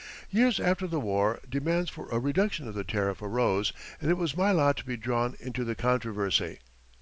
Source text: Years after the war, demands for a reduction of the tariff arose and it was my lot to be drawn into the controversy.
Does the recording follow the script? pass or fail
pass